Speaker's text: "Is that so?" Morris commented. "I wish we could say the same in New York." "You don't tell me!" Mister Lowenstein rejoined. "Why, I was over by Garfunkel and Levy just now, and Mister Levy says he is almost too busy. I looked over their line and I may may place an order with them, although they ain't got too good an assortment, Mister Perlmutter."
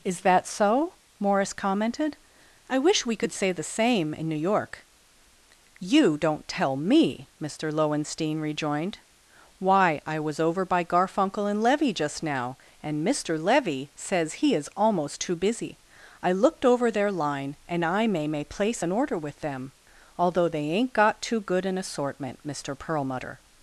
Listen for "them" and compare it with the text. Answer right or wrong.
right